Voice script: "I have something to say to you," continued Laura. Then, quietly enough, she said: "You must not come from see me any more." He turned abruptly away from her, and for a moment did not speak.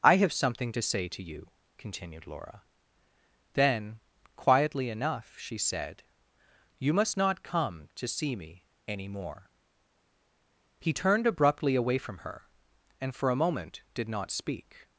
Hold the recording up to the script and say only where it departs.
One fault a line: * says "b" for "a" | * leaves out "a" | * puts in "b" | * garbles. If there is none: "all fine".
* says "to" for "from"